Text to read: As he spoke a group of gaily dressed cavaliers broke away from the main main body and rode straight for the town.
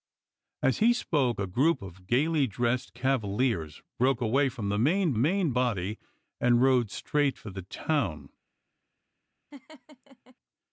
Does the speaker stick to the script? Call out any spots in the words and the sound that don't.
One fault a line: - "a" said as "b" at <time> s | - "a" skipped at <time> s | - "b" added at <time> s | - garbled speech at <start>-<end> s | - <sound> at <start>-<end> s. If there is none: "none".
- laugh at 9.5-10.4 s